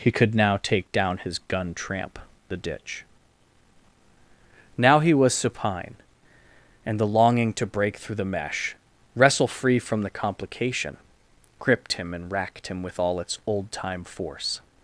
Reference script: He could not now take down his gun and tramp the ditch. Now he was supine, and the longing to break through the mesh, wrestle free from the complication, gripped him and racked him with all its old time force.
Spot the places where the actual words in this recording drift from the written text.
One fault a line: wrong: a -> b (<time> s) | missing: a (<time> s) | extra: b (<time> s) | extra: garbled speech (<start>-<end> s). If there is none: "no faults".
missing: not (0.3 s)
missing: and (1.7 s)